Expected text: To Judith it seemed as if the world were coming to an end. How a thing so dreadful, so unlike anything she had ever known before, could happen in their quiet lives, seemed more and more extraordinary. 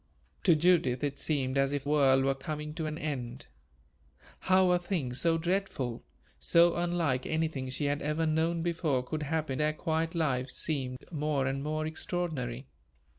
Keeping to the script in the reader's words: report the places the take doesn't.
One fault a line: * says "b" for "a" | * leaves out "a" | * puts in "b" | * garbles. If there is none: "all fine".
* leaves out "the"
* leaves out "in"